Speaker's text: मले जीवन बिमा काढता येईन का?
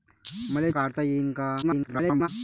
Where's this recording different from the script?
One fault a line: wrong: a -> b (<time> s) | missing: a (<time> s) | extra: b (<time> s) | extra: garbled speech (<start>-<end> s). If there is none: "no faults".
missing: जीवन बिमा (0.7 s)
extra: garbled speech (1.6-2.3 s)